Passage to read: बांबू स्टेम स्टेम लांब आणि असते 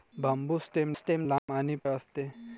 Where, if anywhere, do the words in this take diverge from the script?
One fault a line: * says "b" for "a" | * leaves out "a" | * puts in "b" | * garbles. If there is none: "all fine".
all fine